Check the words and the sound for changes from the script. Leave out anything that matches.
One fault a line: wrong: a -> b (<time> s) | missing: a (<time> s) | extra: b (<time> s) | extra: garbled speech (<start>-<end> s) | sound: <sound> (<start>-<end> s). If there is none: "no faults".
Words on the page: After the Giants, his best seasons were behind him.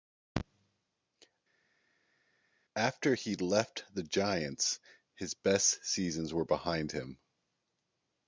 extra: he left (3.1 s)